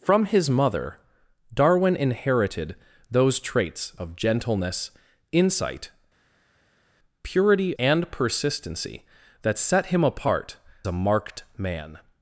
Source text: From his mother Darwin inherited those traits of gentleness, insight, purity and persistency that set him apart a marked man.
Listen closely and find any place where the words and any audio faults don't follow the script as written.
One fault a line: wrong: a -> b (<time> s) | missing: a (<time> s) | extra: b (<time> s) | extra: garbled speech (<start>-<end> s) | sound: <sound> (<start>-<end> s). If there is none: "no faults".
no faults